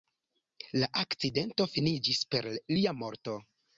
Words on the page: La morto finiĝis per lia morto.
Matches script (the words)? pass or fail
fail